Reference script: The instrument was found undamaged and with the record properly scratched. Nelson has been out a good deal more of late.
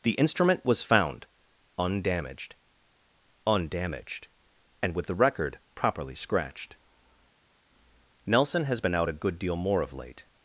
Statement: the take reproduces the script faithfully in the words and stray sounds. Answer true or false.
false